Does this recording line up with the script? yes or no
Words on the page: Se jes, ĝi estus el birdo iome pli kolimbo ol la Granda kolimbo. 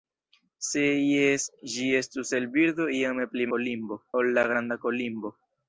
yes